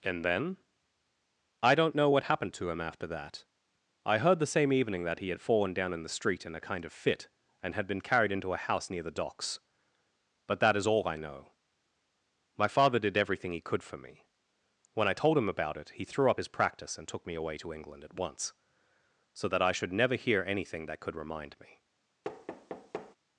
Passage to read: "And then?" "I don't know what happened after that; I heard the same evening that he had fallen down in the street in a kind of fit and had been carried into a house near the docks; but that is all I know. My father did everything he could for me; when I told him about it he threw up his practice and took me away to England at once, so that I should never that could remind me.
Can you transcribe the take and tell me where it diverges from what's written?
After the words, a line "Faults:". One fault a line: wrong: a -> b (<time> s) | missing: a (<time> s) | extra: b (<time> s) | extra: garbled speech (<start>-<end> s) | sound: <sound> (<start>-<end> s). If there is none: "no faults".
"And then?" "I don't know what happened to him after that; I heard the same evening that he had fallen down in the street in a kind of fit and had been carried into a house near the docks; but that is all I know. My father did everything he could for me; when I told him about it he threw up his practice and took me away to England at once, so that I should never hear anything that could remind me.
Faults:
extra: to him (2.5 s)
extra: hear anything (20.1 s)
sound: thud (22.2-23.2 s)